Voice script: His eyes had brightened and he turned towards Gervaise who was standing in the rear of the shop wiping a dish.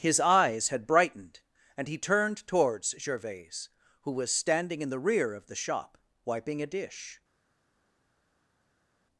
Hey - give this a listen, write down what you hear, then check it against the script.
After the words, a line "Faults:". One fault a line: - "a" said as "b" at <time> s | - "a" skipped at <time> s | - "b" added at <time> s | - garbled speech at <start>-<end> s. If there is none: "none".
His eyes had brightened and he turned towards Gervaise who was standing in the rear of the shop wiping a dish.
Faults:
none